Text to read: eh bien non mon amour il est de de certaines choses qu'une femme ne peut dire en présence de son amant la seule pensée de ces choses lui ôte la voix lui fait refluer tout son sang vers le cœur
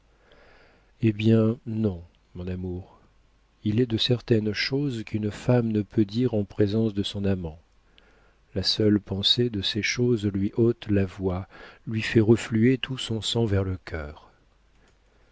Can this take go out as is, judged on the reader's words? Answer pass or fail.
fail